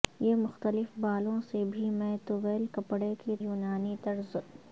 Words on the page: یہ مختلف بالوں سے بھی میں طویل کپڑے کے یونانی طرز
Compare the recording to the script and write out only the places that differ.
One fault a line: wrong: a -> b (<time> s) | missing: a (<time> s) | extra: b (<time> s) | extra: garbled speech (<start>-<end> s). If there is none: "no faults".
no faults